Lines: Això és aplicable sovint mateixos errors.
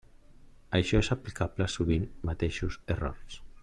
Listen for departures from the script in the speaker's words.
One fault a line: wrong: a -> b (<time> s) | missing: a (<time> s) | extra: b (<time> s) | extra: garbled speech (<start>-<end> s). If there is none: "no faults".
no faults